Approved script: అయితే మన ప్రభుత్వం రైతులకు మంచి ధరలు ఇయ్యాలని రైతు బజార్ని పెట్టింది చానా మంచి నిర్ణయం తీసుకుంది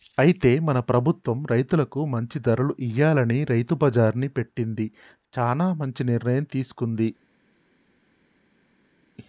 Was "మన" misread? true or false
false